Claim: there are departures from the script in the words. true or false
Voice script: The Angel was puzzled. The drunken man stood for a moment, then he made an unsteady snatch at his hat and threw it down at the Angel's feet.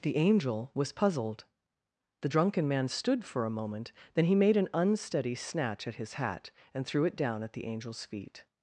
false